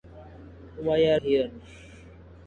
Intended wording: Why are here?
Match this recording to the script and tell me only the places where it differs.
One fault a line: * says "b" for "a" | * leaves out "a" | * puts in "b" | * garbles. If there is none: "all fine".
all fine